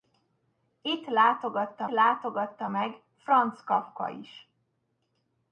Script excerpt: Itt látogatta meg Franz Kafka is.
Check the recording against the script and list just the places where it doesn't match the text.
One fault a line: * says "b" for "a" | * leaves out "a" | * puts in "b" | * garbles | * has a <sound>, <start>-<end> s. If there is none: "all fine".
* puts in "látogatta"